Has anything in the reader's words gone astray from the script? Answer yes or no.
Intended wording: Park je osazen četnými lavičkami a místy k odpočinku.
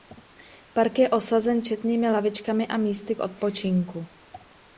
no